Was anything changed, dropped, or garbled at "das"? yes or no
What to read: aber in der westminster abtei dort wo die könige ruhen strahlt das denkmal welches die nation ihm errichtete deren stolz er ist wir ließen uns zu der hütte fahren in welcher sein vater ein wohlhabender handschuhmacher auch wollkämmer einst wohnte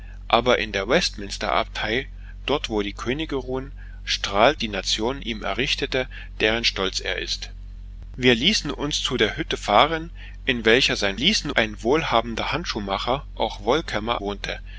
yes